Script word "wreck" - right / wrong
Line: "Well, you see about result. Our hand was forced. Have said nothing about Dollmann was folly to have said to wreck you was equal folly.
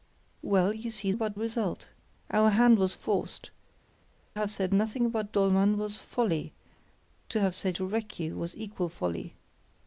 right